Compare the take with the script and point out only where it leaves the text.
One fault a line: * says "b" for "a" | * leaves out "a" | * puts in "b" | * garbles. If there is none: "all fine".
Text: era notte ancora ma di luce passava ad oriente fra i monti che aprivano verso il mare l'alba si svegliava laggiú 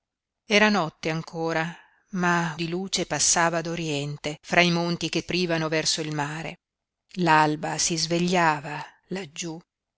all fine